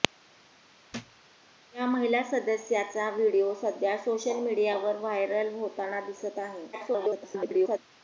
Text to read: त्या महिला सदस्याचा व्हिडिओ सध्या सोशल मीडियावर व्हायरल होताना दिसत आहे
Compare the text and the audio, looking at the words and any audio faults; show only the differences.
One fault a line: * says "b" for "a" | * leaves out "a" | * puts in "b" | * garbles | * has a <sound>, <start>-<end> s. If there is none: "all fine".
* has a thud, 0.9-1.2 s
* garbles